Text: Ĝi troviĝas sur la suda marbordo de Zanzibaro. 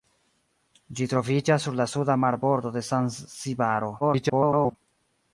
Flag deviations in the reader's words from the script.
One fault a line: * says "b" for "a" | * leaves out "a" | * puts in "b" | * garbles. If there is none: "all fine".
* garbles